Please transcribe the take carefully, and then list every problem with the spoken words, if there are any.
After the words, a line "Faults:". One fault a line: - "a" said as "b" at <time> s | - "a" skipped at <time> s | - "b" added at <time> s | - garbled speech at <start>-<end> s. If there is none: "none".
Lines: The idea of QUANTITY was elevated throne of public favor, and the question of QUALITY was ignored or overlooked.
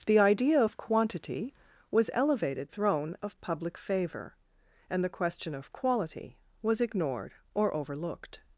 The idea of QUANTITY was elevated throne of public favor, and the question of QUALITY was ignored or overlooked.
Faults:
none